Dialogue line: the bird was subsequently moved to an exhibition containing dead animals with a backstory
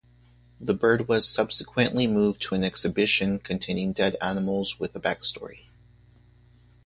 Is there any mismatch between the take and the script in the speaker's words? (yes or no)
no